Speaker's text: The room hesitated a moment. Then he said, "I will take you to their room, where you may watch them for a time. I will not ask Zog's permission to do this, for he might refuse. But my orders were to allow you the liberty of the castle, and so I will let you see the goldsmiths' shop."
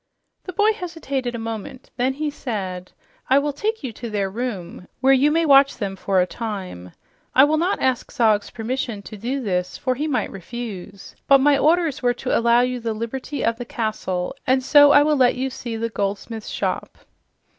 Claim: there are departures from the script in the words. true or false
true